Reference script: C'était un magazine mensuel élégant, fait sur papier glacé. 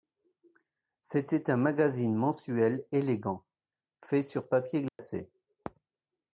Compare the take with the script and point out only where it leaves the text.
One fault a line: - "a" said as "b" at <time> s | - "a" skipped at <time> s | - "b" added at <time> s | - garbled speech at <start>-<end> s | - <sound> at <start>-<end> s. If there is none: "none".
- dropout at 4.9-5.0 s